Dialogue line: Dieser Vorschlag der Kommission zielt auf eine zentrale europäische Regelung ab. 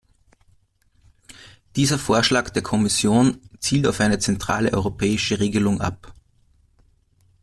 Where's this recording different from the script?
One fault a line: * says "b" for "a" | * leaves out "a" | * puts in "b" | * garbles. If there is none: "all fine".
all fine